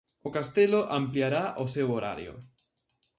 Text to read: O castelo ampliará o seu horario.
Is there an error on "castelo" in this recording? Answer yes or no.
no